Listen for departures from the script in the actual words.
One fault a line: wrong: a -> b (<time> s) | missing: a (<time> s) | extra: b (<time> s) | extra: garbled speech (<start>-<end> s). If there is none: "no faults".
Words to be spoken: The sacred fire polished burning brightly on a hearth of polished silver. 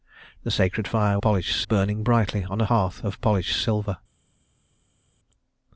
no faults